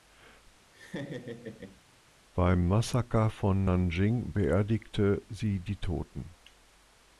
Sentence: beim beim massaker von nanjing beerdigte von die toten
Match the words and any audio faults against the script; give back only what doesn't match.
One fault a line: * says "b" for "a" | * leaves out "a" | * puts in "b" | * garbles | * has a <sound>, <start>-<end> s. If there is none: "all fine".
* has a laugh, 0.7-1.8 s
* leaves out "beim"
* says "sie" for "von"